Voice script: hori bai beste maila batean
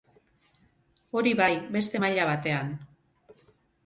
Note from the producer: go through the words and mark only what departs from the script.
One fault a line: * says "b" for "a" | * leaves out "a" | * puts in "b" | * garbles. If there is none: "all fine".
all fine